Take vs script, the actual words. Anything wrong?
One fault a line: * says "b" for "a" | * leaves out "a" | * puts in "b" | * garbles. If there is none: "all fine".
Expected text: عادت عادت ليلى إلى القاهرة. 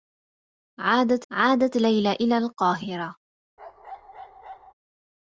all fine